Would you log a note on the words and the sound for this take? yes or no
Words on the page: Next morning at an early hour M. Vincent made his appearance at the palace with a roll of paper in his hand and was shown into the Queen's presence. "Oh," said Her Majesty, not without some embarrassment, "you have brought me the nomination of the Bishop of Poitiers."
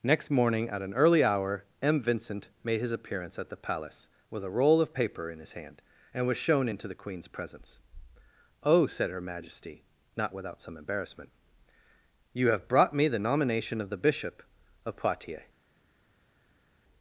no